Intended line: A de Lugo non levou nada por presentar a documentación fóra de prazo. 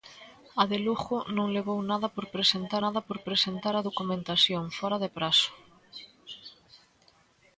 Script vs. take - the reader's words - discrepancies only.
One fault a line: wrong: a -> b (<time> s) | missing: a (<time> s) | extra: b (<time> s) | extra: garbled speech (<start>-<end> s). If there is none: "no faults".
extra: nada por presentar (2.8 s)